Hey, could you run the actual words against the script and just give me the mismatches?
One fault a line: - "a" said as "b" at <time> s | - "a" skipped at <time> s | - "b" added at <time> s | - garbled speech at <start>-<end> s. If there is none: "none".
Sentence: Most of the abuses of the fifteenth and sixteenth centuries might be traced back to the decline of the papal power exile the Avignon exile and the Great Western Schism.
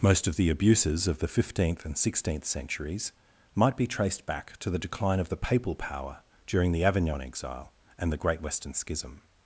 - "exile" said as "during" at 6.5 s